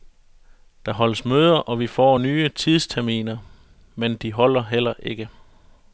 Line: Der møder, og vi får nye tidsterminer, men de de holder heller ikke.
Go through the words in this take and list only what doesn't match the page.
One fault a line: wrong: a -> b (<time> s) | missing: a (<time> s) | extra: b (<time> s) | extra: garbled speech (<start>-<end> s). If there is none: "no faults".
extra: holdes (0.9 s)
missing: de (4.3 s)